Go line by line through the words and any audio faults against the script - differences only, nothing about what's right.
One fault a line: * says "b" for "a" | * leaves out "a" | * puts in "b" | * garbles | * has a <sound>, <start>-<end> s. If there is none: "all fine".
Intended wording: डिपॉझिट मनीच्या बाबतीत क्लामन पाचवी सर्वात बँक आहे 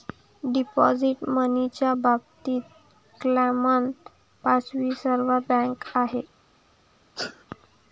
* has a sneeze, 7.1-7.4 s